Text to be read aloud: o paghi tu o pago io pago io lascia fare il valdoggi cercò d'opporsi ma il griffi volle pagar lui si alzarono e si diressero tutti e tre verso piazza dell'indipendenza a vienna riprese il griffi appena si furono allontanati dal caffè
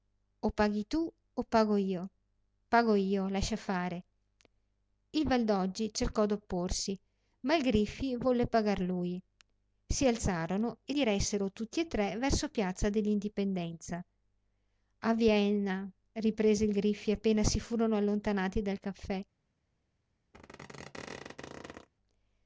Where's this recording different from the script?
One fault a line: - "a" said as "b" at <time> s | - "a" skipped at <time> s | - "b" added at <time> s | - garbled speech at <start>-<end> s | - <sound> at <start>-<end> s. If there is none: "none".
- "si" skipped at 10.9 s
- squeak at 20.3-21.9 s